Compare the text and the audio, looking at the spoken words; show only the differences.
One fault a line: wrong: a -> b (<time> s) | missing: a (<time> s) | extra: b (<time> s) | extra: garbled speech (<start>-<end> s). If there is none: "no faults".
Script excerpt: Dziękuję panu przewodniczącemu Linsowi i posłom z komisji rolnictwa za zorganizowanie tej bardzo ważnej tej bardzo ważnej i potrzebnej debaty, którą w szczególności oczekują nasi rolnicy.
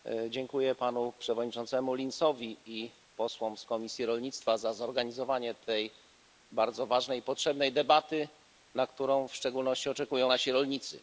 missing: tej bardzo ważnej (7.2 s)
extra: na (8.8 s)